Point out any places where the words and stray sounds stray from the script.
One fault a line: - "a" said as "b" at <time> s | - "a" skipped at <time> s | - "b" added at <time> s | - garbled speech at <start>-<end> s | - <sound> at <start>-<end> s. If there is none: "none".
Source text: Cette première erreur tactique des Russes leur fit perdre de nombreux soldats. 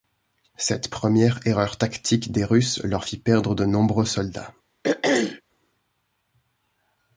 - throat clearing at 4.8-5.4 s